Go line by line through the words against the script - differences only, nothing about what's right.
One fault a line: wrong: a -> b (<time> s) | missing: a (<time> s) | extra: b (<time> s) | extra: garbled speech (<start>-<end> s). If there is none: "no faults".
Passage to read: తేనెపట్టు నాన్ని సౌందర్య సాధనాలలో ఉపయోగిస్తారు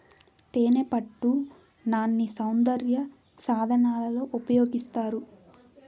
no faults